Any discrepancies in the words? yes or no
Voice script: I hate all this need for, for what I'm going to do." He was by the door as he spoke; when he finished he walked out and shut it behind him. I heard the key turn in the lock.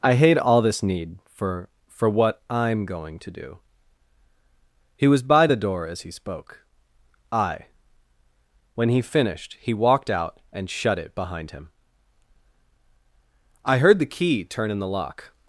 yes